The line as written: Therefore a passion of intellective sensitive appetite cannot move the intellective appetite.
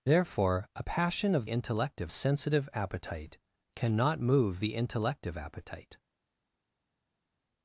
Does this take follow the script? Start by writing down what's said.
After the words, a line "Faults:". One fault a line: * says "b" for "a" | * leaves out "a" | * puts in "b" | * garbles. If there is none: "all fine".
Therefore a passion of intellective sensitive appetite cannot move the intellective appetite.
Faults:
all fine